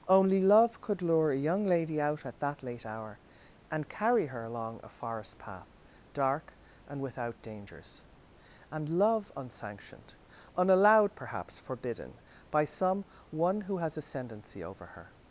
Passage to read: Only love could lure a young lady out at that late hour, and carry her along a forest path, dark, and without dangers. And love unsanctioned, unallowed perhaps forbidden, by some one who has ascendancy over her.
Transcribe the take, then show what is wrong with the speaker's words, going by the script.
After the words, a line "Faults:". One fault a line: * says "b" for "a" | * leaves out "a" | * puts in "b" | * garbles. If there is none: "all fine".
Only love could lure a young lady out at that late hour, and carry her along a forest path, dark, and without dangers. And love unsanctioned, unallowed perhaps forbidden, by some one who has ascendancy over her.
Faults:
all fine